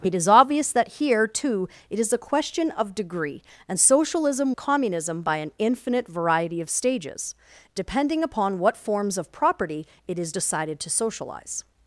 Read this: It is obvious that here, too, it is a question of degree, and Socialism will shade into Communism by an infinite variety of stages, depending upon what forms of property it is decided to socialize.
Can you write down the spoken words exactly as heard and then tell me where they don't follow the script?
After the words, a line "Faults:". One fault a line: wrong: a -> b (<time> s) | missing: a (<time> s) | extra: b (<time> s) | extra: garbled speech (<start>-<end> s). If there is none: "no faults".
It is obvious that here, too, it is a question of degree, and Socialism Communism by an infinite variety of stages, depending upon what forms of property it is decided to socialize.
Faults:
missing: will shade into (4.5 s)